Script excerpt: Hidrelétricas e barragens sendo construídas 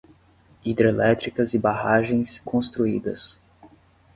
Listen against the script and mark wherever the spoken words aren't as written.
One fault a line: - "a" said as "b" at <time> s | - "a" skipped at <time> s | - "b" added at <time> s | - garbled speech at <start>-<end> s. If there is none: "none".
- "sendo" skipped at 2.4 s